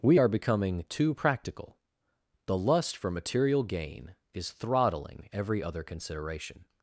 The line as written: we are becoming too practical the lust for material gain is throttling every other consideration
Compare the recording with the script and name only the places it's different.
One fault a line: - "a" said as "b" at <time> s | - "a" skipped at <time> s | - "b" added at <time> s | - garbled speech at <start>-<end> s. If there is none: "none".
none